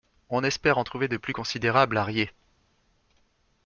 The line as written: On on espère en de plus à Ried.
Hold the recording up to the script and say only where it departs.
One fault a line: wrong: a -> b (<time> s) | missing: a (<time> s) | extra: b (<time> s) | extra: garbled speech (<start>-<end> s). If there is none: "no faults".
missing: on (0.4 s)
extra: trouver (0.8 s)
extra: considérables (1.3 s)